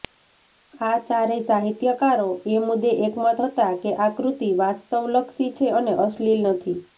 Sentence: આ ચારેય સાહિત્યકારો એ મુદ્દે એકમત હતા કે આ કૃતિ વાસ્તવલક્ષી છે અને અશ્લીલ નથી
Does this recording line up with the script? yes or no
yes